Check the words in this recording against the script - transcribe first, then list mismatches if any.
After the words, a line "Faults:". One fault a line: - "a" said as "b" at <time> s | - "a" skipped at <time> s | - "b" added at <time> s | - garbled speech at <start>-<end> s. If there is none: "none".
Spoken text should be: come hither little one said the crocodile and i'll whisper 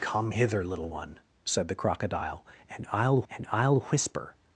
come hither little one said the crocodile and i'll and i'll whisper
Faults:
- "and i'll" added at 3.3 s